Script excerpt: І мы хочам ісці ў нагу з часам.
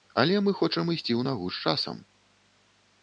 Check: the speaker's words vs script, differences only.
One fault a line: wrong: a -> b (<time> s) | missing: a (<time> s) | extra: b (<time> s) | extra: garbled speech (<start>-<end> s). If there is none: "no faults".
wrong: І -> Але (0.2 s)